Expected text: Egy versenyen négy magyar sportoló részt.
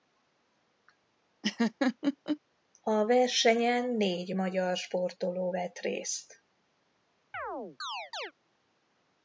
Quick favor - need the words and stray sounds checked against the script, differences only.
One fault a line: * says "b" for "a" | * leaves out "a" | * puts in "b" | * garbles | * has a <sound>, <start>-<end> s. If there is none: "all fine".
* has a laugh, 1.4-2.4 s
* says "A" for "Egy"
* puts in "vett"
* has a chirp, 7.3-8.3 s